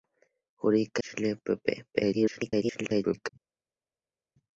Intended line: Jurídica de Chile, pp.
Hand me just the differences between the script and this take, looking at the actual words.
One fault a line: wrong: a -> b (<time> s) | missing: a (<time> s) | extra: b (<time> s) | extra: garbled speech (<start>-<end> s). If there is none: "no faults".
missing: de (1.0 s)
extra: garbled speech (1.9-3.3 s)